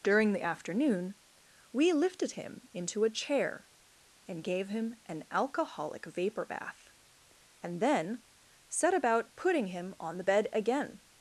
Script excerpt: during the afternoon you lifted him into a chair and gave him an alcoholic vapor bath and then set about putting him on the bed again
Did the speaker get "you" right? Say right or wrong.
wrong